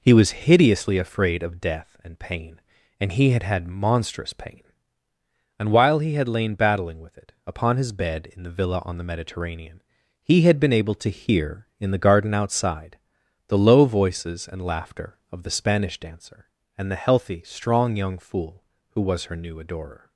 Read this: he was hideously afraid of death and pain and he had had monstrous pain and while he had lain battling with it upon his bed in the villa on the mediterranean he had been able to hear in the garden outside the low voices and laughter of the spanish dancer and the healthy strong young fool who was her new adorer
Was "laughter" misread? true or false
false